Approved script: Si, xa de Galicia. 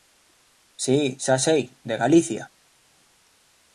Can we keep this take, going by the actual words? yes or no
no